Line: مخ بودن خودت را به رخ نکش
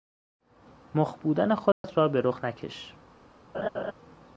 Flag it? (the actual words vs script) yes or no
no